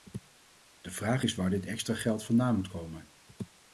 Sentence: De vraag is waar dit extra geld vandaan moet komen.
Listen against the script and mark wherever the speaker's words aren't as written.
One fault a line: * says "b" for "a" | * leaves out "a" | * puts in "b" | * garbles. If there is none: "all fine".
all fine